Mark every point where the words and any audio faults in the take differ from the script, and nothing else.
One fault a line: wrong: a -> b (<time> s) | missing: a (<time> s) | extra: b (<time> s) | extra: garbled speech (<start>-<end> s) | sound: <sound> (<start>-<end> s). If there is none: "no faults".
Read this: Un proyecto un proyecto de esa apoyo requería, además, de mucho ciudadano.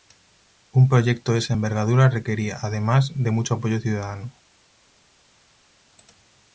missing: un proyecto (1.3 s)
wrong: apoyo -> envergadura (1.5 s)
extra: apoyo (3.6 s)